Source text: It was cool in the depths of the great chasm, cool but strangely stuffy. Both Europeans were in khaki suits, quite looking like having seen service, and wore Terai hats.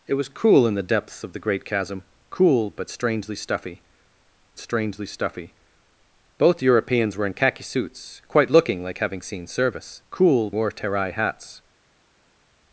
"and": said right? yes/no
no